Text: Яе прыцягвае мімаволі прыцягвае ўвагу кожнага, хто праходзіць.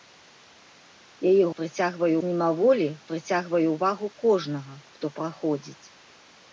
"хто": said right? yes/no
yes